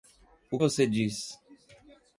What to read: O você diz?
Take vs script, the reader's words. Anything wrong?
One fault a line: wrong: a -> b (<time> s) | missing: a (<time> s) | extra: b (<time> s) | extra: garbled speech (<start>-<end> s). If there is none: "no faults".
no faults